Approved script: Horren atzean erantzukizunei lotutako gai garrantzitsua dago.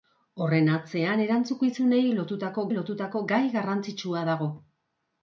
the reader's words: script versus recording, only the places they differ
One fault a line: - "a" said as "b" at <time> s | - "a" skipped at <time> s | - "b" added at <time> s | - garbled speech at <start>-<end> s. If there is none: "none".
- "lotutako" added at 2.8 s